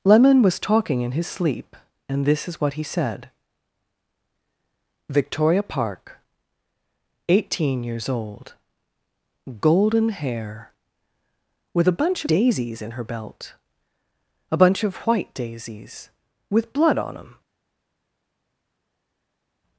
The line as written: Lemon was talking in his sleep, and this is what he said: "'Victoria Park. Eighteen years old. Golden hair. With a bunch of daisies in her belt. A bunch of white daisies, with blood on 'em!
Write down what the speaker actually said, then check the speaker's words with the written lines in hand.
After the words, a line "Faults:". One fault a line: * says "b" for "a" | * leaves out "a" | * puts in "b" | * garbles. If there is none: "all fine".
Lemon was talking in his sleep, and this is what he said: "'Victoria Park. Eighteen years old. Golden hair. With a bunch daisies in her belt. A bunch of white daisies, with blood on 'em!
Faults:
* leaves out "of"